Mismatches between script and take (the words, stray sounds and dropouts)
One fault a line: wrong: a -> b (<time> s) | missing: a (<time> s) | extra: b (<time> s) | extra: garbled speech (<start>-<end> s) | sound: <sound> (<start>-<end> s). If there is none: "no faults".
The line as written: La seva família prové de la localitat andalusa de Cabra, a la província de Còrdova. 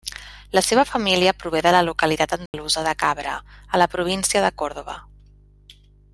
sound: dropout (2.5-2.5 s)